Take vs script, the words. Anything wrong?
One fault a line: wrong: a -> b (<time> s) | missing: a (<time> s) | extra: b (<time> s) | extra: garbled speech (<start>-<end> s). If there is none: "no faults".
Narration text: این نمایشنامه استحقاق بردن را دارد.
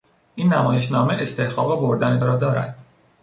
no faults